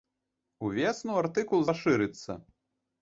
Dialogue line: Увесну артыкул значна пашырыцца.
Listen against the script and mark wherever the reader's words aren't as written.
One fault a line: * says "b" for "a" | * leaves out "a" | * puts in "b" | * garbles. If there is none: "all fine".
* leaves out "значна"